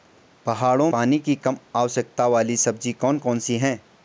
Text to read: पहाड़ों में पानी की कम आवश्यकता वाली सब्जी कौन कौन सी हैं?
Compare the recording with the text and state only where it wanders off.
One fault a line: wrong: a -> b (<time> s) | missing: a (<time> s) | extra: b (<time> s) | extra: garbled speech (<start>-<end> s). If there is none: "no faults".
missing: में (0.9 s)